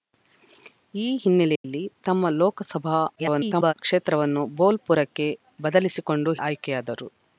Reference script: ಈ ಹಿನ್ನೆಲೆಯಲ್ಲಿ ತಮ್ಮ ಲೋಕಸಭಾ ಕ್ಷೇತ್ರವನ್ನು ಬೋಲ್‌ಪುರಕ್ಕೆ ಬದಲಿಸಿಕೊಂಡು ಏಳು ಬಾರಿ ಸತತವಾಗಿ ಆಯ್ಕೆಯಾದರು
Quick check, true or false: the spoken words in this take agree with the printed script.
false